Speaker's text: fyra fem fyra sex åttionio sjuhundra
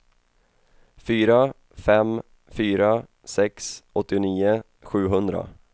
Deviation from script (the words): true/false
false